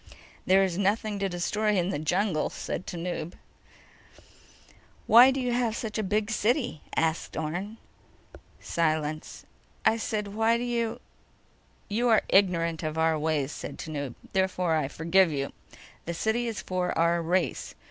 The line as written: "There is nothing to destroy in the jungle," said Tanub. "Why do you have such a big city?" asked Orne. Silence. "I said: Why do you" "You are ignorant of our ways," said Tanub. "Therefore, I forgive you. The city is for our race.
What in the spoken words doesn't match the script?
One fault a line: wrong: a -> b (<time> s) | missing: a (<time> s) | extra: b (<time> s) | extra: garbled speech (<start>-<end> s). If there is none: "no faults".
no faults